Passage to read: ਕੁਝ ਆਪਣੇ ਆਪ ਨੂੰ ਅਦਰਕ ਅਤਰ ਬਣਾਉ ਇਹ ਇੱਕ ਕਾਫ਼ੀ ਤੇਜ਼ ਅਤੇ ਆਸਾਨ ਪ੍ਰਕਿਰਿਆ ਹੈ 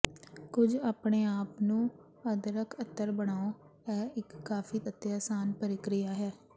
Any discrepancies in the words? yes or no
yes